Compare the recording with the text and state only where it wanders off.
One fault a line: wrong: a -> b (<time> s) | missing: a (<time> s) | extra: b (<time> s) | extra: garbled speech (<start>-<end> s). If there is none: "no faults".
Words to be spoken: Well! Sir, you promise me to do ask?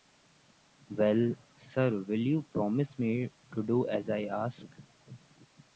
extra: will (2.0 s)
extra: as I (3.9 s)